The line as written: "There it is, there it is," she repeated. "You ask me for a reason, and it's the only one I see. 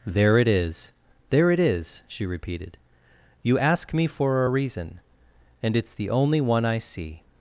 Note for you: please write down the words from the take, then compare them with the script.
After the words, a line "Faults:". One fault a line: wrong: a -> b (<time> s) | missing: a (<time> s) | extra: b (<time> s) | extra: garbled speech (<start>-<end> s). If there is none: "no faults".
"There it is, there it is," she repeated. "You ask me for a reason, and it's the only one I see.
Faults:
no faults